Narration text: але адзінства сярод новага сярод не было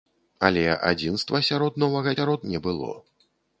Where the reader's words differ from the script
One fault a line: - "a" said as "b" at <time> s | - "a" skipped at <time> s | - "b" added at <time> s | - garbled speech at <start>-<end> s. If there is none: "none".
none